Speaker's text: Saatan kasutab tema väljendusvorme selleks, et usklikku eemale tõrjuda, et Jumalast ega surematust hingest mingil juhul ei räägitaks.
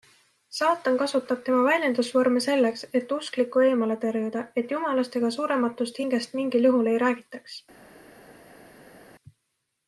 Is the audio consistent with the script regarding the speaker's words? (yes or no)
yes